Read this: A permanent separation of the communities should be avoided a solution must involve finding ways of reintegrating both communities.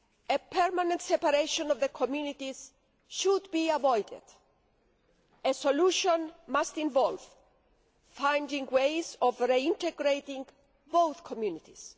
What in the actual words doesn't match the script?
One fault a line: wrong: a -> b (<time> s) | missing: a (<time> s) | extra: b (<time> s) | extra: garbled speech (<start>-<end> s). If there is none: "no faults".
no faults